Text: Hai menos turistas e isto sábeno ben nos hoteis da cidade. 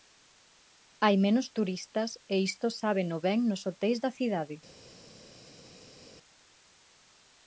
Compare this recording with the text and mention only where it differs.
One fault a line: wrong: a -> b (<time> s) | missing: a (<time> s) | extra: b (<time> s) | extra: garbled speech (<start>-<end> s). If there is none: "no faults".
no faults